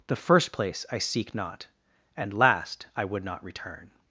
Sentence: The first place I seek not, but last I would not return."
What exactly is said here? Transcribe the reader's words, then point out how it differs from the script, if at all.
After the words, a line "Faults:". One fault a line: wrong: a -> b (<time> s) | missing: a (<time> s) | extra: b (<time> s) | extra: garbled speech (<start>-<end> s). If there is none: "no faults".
The first place I seek not, and last I would not return."
Faults:
wrong: but -> and (2.2 s)